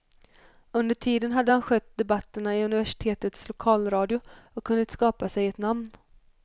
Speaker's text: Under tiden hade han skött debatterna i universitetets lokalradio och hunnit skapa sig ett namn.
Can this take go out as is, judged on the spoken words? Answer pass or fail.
pass